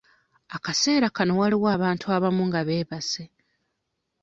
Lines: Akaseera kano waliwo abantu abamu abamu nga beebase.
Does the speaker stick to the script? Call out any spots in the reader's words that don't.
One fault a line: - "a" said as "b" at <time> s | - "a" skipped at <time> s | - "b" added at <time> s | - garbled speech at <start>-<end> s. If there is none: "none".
- "abamu" skipped at 2.4 s